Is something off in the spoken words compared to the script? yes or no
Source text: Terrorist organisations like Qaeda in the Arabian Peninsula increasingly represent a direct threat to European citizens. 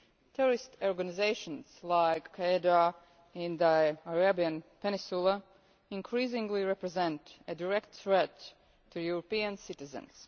no